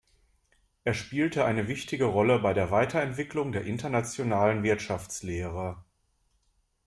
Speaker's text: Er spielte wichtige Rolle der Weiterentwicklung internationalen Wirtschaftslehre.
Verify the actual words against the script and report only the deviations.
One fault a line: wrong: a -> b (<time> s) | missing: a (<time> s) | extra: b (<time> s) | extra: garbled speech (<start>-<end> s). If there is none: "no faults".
extra: eine (1.4 s)
extra: bei (2.4 s)
extra: der (3.5 s)